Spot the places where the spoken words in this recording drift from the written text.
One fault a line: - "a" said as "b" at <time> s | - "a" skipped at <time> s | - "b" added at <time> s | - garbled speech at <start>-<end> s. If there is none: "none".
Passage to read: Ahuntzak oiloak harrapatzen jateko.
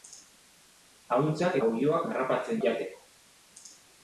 none